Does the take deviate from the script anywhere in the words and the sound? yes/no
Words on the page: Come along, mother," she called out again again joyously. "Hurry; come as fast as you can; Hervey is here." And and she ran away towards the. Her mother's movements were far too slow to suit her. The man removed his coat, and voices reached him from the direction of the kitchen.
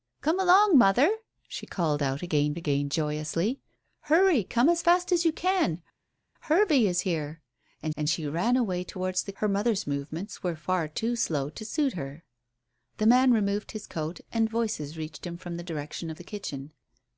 no